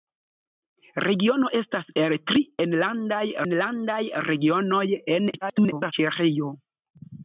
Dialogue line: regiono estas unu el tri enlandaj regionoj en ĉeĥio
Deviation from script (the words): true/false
true